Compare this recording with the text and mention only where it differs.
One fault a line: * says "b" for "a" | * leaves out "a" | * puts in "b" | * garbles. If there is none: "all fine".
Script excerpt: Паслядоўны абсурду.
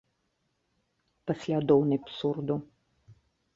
all fine